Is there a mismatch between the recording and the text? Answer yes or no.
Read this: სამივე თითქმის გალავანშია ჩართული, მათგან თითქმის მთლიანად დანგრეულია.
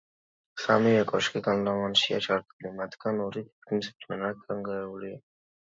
yes